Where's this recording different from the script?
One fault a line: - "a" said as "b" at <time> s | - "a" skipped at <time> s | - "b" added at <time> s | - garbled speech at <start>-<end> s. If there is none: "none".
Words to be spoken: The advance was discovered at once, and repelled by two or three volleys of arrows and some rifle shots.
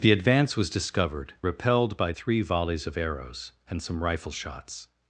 - "at once and" skipped at 1.4 s
- "two or" skipped at 2.1 s